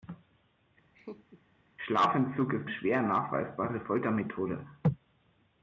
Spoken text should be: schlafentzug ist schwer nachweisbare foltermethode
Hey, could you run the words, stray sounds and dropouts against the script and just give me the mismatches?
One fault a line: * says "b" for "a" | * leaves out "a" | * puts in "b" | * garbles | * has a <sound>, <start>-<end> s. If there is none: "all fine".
* has a laugh, 0.9-1.4 s